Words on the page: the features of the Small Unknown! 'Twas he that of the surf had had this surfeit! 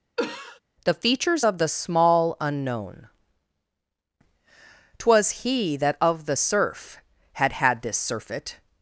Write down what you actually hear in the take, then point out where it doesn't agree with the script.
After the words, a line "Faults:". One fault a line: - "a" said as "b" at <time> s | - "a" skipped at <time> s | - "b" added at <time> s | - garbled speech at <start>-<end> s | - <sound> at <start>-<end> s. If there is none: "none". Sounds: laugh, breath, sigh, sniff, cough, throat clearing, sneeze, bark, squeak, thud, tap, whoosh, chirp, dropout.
the features of the Small Unknown! 'Twas he that of the surf had had this surfeit!
Faults:
- cough at 0.2-0.6 s